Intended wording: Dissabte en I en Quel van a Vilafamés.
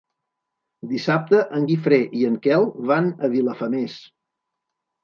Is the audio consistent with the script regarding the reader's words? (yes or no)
no